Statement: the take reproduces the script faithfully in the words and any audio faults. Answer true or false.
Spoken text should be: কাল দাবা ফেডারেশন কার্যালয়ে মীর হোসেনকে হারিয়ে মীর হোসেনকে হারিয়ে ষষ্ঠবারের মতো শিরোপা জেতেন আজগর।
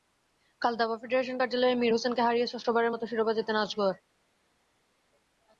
false